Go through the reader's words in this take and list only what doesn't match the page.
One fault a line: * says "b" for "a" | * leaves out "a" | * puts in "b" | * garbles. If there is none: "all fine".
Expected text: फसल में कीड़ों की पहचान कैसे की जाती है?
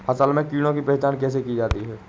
all fine